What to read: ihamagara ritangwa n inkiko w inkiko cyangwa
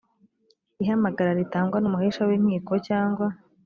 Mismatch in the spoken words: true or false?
true